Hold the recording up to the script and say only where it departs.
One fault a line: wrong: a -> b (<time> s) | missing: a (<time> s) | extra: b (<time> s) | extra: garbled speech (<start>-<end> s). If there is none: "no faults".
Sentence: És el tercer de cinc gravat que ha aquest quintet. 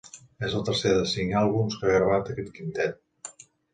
wrong: gravat -> àlbums (1.4 s)
extra: gravat (2.0 s)